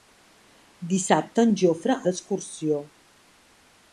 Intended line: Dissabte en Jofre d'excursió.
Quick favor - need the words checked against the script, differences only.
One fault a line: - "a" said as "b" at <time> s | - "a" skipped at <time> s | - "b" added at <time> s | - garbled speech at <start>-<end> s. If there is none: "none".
none